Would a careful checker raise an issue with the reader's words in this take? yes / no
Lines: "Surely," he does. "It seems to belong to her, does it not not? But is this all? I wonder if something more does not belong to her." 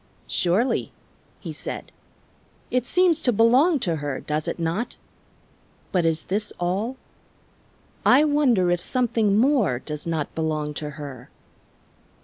yes